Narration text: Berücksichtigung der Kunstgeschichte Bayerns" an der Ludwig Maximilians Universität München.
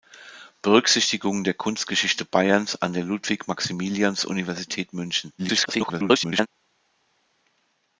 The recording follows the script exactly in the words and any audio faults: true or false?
false